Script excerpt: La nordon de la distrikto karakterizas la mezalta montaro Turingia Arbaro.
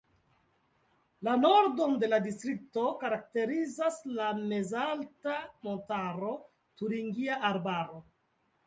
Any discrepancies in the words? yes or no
no